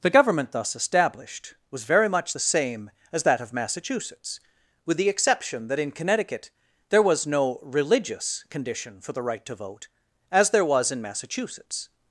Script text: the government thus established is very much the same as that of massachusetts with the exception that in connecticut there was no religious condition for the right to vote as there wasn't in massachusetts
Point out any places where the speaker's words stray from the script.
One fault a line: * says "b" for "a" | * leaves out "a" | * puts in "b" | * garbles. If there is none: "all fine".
* says "was" for "is"
* says "was" for "wasn't"